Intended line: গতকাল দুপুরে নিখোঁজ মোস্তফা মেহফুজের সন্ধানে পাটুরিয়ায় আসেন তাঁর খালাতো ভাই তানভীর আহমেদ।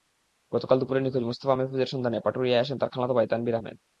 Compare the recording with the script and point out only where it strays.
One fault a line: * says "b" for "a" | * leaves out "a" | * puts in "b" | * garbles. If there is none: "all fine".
all fine